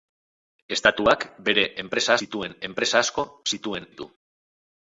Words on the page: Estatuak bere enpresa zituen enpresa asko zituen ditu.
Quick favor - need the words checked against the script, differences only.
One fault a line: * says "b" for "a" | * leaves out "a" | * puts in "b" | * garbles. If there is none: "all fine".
all fine